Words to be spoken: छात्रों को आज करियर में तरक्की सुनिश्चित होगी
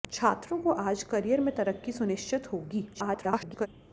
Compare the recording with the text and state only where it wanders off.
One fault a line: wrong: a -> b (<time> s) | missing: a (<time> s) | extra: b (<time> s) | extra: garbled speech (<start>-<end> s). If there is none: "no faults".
extra: garbled speech (2.9-3.7 s)